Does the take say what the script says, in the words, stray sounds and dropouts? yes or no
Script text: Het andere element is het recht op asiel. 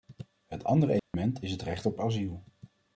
no